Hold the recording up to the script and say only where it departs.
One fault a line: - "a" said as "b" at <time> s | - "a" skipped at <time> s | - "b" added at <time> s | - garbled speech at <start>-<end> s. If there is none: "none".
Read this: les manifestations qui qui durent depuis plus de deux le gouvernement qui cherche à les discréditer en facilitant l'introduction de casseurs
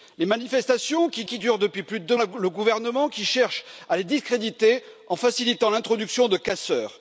none